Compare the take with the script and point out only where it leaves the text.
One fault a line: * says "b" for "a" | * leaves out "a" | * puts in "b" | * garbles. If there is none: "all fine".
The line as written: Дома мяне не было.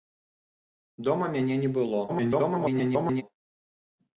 * garbles